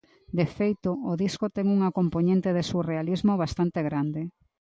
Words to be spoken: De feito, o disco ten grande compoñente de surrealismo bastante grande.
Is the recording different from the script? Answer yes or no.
yes